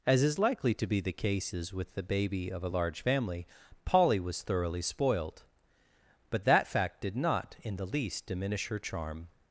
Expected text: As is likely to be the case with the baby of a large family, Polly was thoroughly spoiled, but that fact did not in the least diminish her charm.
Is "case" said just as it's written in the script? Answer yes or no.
no